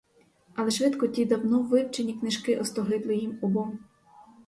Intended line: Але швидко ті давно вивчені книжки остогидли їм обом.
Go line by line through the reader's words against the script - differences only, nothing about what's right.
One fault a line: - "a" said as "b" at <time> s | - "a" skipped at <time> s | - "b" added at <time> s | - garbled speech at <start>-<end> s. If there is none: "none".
none